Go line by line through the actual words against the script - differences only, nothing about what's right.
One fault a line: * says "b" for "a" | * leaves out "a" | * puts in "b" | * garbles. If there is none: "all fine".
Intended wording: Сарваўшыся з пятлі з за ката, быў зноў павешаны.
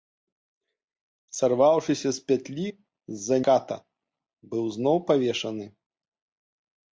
all fine